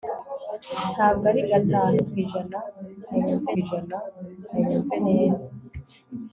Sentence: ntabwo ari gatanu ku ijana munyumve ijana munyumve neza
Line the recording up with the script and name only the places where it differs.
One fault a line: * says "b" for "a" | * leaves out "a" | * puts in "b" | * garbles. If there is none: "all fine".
all fine